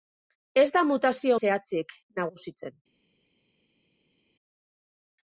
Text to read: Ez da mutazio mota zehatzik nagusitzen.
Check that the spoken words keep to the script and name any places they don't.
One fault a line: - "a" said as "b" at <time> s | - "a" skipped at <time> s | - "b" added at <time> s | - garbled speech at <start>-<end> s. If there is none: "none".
- "mota" skipped at 1.4 s